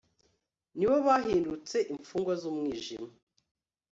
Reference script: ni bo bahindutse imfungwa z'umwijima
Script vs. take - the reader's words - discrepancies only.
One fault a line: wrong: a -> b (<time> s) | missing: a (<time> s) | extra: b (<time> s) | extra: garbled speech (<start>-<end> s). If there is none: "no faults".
no faults